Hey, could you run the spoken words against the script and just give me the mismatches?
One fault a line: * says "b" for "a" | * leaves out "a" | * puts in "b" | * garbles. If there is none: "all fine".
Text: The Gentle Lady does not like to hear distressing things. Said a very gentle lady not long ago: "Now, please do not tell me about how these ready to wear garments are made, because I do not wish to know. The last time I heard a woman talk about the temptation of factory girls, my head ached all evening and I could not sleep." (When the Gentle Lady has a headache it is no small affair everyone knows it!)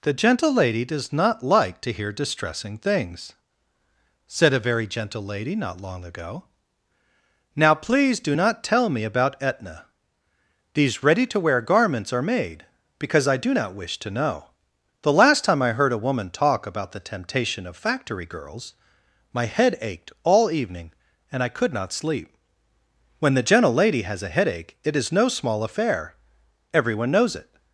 * says "etna" for "how"